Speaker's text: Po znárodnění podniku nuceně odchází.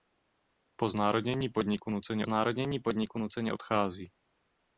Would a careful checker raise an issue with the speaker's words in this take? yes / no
yes